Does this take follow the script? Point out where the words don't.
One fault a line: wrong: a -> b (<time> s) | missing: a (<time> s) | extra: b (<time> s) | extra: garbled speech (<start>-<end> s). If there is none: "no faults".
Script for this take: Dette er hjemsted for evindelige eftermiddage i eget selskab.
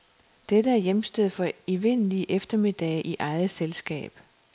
no faults